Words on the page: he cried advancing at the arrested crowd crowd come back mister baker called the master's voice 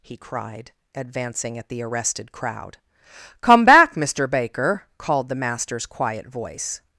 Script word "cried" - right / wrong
right